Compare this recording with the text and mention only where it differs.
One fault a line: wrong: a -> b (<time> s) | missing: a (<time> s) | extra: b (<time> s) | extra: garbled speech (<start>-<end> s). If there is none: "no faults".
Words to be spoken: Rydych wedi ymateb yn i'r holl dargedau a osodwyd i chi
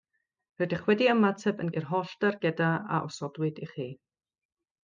no faults